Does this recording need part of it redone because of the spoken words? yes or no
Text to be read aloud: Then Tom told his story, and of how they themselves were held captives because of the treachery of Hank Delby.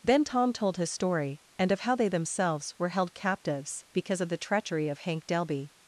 no